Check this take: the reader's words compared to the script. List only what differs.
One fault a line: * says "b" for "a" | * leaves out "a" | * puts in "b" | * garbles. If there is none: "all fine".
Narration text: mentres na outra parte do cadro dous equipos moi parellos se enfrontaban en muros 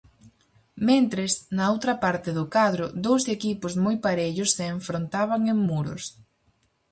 all fine